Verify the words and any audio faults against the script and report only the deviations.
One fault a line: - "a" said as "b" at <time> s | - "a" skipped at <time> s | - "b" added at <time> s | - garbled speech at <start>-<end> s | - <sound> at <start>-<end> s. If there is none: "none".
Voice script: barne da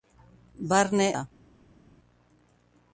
none